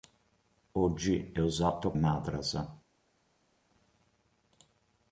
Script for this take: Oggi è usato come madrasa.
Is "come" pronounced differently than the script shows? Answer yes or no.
yes